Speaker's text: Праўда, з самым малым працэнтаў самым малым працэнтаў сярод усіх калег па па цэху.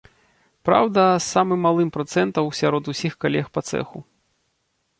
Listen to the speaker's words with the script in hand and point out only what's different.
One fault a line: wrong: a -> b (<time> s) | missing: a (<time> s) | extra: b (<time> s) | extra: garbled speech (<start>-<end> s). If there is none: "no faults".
missing: самым малым працэнтаў (2.4 s)
missing: па (3.7 s)